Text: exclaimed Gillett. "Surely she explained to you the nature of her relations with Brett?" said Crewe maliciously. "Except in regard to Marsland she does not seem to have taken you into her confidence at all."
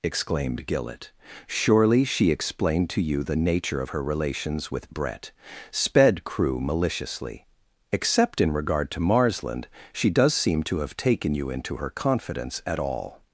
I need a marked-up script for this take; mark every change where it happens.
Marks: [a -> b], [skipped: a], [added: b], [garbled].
exclaimed Gillett. "Surely she explained to you the nature of her relations with Brett?" [said -> sped] Crewe maliciously. "Except in regard to Marsland she does [skipped: not] seem to have taken you into her confidence at all."